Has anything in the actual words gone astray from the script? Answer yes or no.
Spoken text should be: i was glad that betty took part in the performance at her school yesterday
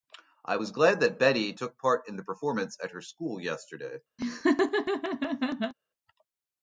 no